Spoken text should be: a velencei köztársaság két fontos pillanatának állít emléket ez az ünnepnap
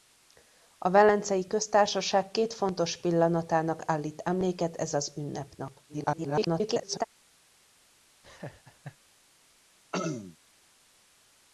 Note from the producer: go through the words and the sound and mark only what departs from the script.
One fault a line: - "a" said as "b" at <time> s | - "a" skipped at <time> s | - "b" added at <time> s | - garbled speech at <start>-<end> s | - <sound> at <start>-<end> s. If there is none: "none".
- garbled speech at 5.9-7.0 s
- laugh at 8.2-9.0 s
- throat clearing at 9.9-10.4 s